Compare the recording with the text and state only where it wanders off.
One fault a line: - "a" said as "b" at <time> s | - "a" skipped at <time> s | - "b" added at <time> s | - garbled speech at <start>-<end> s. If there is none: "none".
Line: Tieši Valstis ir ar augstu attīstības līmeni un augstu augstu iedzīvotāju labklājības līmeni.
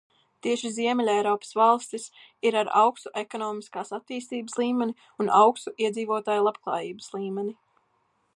- "Ziemeļeiropas" added at 0.8 s
- "ekonomiskās" added at 3.2 s
- "augstu" skipped at 5.8 s